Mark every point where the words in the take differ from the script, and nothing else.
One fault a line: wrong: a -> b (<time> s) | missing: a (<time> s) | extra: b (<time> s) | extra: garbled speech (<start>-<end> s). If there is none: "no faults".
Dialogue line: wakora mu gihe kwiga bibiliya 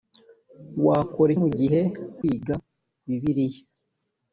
no faults